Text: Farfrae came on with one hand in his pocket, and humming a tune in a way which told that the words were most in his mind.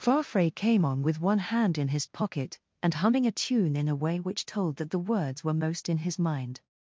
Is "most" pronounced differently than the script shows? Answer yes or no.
no